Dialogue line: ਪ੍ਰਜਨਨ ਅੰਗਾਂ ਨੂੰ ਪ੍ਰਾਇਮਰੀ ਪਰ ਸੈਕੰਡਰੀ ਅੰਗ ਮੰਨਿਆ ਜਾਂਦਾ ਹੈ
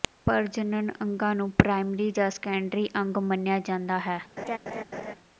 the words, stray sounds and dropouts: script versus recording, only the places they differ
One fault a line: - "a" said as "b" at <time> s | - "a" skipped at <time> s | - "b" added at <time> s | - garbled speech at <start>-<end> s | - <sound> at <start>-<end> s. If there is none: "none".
- "ਪਰ" said as "ਜਾਂ" at 2.1 s
- laugh at 4.4-5.1 s